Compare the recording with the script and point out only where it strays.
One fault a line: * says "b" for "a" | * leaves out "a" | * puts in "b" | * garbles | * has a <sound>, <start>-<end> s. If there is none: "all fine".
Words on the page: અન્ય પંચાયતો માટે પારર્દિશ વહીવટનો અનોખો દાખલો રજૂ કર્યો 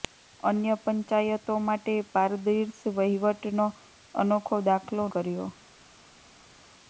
* leaves out "રજૂ"